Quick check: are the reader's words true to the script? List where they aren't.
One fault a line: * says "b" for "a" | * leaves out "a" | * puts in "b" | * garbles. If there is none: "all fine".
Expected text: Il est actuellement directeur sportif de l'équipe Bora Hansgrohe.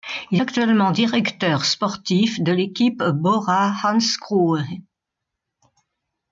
* leaves out "est"